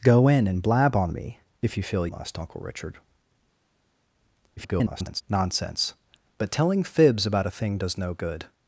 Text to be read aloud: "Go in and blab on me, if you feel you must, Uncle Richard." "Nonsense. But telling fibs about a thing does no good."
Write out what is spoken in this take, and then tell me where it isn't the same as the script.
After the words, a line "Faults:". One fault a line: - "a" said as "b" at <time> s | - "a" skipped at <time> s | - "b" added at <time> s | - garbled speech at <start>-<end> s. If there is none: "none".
"Go in and blab on me, if you feel must, Uncle Richard." [garbled] "Nonsense. But telling fibs about a thing does no good."
Faults:
- "you" skipped at 2.1 s
- garbled speech at 4.6-5.2 s